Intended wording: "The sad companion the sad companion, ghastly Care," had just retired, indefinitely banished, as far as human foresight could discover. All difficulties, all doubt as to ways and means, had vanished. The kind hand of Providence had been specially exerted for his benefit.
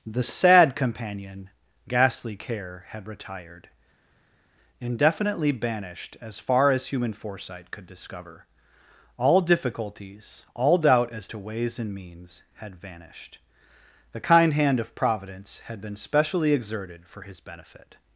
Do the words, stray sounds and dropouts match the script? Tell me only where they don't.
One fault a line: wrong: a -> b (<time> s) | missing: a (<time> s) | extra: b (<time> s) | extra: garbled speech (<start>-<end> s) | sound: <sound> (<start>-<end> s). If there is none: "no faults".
missing: the sad companion (1.5 s)
missing: just (3.1 s)